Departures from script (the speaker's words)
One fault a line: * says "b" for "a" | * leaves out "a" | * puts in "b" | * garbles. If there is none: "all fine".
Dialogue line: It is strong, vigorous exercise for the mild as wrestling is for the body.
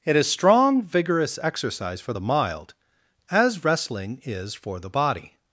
all fine